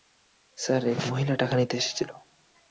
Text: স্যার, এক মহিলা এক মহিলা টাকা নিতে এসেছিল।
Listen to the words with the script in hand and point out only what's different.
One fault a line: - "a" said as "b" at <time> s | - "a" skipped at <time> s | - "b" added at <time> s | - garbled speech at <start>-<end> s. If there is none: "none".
- "এক মহিলা" skipped at 1.4 s